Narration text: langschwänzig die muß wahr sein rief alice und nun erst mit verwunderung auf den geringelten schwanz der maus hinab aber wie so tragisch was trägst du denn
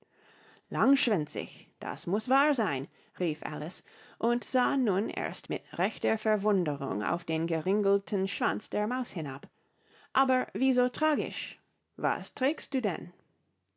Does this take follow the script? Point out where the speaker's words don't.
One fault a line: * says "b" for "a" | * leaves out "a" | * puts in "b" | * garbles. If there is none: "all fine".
* says "das" for "die"
* puts in "sah"
* puts in "rechter"